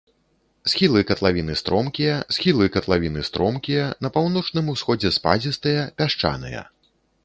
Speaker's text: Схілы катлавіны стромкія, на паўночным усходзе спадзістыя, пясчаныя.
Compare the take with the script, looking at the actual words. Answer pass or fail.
fail